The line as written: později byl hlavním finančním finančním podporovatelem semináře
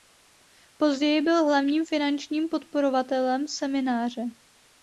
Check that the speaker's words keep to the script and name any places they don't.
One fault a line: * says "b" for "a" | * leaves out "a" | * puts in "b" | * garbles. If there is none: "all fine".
* leaves out "finančním"